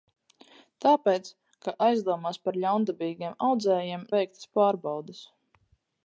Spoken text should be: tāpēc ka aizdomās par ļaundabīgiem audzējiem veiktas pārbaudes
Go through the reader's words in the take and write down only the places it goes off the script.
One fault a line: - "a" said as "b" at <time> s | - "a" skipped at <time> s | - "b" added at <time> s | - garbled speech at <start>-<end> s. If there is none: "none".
none